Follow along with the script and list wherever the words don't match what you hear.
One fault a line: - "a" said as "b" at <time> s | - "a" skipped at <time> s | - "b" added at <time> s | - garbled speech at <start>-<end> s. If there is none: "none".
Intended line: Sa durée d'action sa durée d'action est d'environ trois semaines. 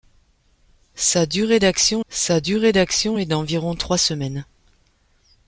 none